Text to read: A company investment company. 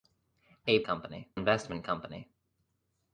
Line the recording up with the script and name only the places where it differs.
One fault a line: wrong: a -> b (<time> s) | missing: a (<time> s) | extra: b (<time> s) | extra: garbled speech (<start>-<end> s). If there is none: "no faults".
no faults